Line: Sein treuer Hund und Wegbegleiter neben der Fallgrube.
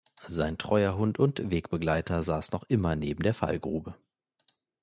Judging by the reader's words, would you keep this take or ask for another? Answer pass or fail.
fail